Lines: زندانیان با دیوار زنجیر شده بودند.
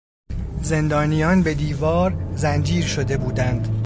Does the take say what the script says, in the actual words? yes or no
no